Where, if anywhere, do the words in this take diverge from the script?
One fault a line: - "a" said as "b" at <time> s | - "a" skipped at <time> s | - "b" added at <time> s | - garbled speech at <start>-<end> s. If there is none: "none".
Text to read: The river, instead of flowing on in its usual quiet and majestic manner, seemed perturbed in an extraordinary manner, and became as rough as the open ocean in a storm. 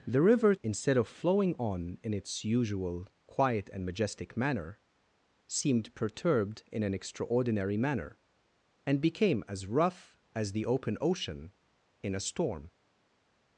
none